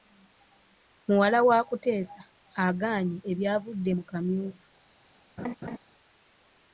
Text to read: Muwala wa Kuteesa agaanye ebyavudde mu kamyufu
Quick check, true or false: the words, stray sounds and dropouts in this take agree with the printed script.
false